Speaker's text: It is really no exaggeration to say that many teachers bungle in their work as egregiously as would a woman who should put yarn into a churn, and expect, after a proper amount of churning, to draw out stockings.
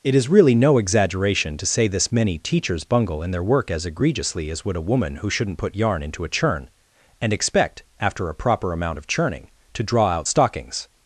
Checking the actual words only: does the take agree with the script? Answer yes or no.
no